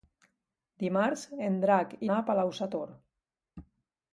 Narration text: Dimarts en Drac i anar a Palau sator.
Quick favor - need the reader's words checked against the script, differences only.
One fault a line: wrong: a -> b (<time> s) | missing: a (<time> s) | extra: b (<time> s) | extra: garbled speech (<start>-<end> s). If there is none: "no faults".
no faults